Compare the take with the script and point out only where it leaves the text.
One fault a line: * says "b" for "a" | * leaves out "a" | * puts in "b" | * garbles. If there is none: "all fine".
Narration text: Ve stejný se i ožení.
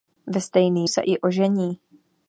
all fine